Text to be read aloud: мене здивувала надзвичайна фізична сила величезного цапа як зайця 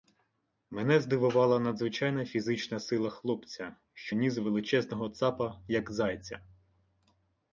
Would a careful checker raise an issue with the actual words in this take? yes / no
yes